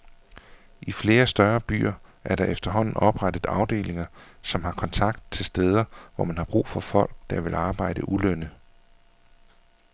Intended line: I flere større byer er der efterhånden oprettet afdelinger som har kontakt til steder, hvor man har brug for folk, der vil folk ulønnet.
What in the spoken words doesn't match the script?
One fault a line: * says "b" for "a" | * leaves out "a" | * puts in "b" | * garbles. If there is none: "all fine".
* says "arbejde" for "folk"